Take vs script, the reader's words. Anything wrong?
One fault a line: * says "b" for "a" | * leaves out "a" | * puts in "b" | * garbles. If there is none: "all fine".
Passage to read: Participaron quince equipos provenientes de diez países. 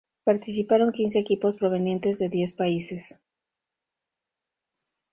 all fine